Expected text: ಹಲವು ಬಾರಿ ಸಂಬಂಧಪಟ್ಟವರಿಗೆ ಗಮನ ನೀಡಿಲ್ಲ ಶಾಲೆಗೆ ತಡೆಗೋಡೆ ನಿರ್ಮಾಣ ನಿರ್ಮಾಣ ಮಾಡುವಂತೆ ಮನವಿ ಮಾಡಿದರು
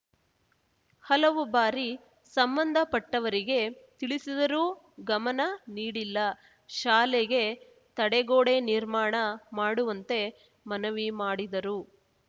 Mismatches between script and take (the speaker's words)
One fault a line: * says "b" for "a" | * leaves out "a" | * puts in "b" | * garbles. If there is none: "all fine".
* puts in "ತಿಳಿಸಿದರೂ"
* leaves out "ನಿರ್ಮಾಣ"